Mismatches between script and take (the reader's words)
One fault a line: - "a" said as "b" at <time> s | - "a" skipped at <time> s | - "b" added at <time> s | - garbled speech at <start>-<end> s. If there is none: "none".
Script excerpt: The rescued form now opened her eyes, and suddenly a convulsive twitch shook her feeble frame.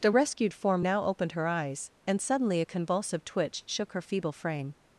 none